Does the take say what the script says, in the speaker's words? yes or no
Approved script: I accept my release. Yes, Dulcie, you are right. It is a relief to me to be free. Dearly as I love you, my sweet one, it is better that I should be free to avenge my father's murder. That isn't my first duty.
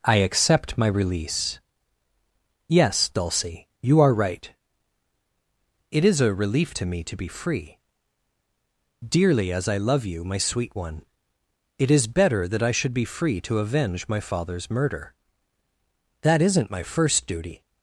yes